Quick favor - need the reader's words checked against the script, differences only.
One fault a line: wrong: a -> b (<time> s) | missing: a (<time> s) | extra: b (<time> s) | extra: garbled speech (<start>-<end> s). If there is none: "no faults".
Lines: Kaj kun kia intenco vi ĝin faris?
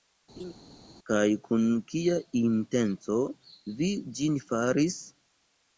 no faults